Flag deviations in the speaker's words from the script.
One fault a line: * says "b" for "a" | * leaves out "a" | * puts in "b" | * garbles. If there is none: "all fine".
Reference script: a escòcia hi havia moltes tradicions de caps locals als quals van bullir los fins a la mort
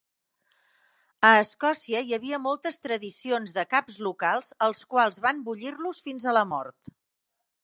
all fine